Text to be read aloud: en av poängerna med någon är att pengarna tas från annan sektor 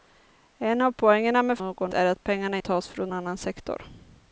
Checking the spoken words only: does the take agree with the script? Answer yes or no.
yes